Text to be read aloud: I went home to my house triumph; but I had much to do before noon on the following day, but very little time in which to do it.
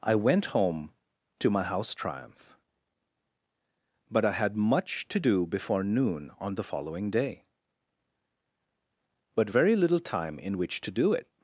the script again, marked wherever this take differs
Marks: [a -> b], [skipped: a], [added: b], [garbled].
I went home to my house triumph; but I had much to do before noon on the following day, but very little time in which to do it.